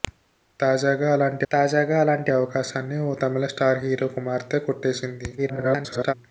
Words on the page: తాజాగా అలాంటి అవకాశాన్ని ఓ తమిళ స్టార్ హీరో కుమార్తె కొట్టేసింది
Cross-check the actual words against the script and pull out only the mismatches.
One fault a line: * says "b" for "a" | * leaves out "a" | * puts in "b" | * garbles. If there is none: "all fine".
* puts in "తాజాగా అలాంటి"
* garbles